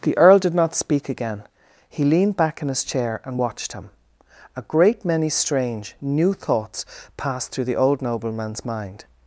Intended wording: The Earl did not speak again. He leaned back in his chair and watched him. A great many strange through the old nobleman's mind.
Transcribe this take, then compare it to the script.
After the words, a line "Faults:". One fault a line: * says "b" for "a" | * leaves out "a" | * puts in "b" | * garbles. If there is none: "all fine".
The Earl did not speak again. He leaned back in his chair and watched him. A great many strange new thoughts passed through the old nobleman's mind.
Faults:
* puts in "new thoughts passed"